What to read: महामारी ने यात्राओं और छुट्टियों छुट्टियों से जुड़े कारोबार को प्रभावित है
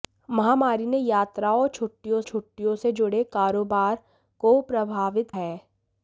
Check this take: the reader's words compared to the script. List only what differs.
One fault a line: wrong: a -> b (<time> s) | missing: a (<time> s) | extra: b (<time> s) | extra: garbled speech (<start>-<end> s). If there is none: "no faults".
no faults